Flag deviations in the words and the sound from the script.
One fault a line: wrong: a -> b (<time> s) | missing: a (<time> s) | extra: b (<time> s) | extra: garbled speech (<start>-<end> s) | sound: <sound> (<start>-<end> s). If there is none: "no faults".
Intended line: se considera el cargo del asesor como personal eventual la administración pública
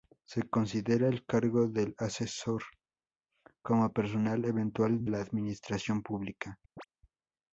sound: chirp (6.8-6.9 s)